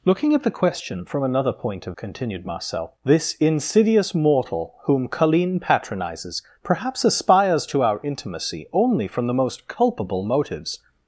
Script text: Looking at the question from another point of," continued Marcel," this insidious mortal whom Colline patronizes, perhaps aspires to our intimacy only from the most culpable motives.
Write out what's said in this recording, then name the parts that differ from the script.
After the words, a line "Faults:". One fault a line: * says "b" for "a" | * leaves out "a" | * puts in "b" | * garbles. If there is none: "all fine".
Looking at the question from another point of," continued Marcel," this insidious mortal whom Colline patronizes, perhaps aspires to our intimacy only from the most culpable motives.
Faults:
all fine